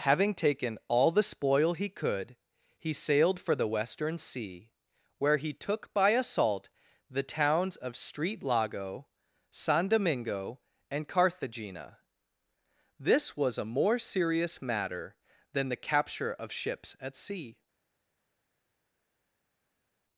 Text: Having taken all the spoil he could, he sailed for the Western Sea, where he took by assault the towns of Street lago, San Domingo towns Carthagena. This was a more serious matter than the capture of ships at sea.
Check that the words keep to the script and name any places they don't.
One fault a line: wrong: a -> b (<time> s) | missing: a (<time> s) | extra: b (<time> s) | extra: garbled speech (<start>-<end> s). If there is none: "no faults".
wrong: towns -> and (10.9 s)